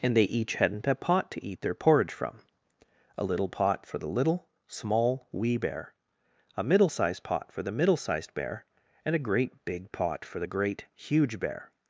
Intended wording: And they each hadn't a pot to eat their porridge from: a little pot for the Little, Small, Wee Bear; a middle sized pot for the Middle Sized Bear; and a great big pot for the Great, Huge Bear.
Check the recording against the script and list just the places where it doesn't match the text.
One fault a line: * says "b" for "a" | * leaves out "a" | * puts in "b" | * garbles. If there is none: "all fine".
all fine